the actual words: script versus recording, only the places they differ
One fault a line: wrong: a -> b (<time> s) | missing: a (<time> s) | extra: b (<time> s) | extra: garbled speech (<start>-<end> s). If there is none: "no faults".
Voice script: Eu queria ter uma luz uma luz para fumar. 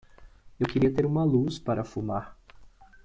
missing: uma luz (1.6 s)